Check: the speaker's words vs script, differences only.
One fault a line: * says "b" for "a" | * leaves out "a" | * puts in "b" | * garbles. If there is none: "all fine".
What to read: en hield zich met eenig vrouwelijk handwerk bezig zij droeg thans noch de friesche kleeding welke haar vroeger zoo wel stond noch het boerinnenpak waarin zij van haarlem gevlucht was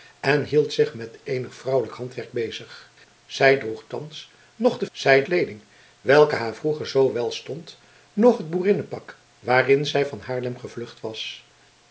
* says "zij" for "friesche"